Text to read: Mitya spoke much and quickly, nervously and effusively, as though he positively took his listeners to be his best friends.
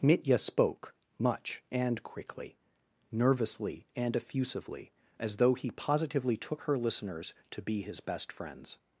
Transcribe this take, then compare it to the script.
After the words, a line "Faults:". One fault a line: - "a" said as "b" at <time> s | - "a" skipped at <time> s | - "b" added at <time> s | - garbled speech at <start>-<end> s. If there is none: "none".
Mitya spoke much and quickly, nervously and effusively, as though he positively took her listeners to be his best friends.
Faults:
- "his" said as "her" at 6.6 s